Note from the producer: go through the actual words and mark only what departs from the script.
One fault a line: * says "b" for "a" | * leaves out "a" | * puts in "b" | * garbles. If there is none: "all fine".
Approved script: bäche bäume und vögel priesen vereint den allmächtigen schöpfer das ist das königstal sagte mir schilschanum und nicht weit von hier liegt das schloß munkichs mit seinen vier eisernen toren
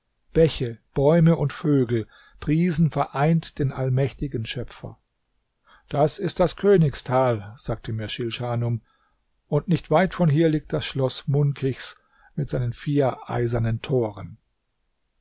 all fine